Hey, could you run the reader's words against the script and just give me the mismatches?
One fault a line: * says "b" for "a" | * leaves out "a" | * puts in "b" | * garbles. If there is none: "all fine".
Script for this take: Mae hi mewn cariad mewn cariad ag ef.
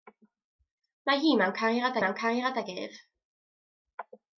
all fine